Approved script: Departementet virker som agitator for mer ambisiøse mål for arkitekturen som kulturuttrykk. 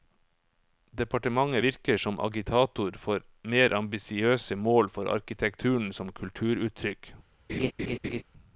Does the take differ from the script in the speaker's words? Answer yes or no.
no